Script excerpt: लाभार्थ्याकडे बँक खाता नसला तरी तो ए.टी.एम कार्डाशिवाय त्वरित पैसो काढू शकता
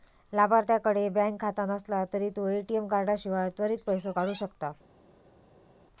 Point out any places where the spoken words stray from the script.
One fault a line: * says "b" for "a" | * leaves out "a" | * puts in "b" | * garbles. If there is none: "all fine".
all fine